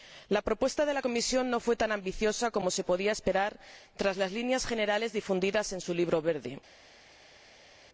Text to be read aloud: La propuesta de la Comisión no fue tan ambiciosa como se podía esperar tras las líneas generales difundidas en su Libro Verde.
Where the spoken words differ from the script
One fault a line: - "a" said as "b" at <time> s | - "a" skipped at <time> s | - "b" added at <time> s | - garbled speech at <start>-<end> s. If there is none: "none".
none